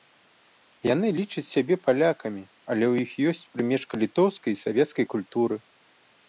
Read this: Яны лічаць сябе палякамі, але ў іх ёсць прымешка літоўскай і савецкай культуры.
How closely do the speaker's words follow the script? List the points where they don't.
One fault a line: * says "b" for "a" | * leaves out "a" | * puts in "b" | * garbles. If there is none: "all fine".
all fine